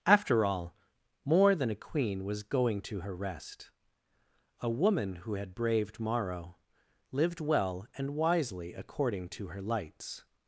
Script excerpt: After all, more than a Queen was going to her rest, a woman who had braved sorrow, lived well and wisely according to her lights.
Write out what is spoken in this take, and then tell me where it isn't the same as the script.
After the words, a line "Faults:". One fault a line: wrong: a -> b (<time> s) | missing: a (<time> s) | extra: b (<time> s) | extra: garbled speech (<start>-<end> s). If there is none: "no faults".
After all, more than a Queen was going to her rest, a woman who had braved morrow, lived well and wisely according to her lights.
Faults:
wrong: sorrow -> morrow (6.0 s)